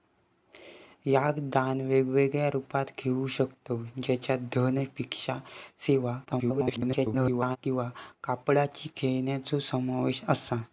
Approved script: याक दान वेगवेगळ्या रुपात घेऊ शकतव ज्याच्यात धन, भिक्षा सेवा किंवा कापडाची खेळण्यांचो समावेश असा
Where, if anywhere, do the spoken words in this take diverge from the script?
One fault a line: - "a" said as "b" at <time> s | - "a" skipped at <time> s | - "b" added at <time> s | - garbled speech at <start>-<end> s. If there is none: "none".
- garbled speech at 6.3-7.6 s